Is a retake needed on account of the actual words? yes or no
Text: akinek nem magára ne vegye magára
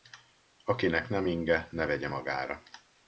yes